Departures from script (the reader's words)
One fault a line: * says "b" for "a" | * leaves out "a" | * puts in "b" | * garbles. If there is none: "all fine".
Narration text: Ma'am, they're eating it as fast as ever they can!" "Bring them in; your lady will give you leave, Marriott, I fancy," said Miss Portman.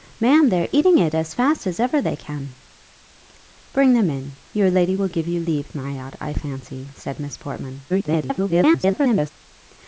* garbles